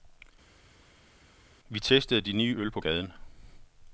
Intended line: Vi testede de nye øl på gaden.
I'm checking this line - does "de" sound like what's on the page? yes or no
yes